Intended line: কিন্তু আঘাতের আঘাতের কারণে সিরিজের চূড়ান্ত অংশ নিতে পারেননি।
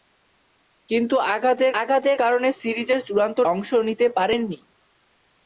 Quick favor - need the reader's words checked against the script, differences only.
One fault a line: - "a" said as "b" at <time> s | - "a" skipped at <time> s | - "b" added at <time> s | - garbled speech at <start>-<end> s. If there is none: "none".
none